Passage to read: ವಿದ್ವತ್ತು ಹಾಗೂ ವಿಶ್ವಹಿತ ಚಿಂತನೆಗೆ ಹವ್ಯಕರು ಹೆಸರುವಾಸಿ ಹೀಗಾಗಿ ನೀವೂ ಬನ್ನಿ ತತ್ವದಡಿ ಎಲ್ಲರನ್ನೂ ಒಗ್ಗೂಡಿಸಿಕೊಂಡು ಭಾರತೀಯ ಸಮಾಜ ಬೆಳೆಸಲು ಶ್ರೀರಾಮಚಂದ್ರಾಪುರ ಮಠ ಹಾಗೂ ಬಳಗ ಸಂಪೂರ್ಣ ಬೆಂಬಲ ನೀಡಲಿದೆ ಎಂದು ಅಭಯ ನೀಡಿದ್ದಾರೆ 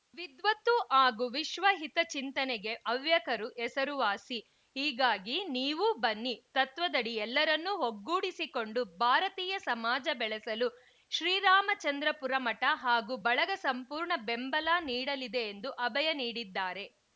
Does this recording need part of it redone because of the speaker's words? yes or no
no